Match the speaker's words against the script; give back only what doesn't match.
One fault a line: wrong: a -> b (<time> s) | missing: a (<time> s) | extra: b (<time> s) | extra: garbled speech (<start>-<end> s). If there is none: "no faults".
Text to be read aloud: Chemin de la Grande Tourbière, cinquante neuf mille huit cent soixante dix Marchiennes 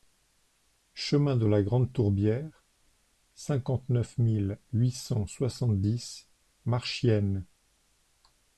no faults